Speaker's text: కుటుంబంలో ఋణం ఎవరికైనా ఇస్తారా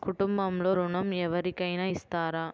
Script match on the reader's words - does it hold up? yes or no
yes